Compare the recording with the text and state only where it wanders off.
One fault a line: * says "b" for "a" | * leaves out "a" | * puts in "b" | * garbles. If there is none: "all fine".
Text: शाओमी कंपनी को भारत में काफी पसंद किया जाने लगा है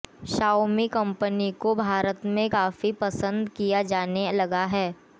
all fine